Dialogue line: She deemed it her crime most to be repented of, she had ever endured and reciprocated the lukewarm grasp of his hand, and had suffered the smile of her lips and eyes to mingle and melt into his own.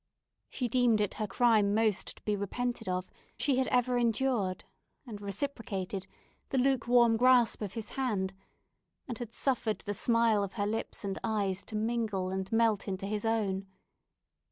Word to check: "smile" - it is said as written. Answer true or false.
true